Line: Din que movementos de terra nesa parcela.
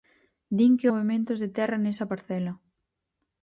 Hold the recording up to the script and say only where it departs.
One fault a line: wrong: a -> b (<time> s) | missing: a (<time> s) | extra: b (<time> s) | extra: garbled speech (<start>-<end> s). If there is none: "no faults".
no faults